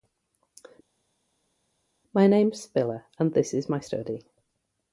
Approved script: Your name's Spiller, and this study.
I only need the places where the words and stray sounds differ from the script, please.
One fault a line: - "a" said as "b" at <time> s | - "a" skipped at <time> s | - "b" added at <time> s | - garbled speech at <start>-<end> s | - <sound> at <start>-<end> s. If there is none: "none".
- "Your" said as "My" at 2.1 s
- "is my" added at 3.5 s